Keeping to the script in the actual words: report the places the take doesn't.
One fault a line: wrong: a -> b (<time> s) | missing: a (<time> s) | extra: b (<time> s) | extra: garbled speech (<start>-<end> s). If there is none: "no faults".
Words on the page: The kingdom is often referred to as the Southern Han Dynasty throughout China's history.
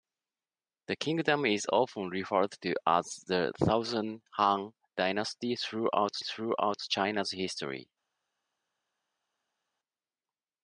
extra: throughout (6.2 s)